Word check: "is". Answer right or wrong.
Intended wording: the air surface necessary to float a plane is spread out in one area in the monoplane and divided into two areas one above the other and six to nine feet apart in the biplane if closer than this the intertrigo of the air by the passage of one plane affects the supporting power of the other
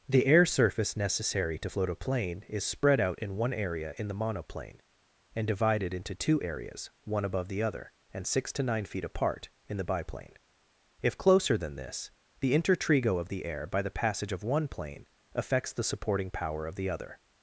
right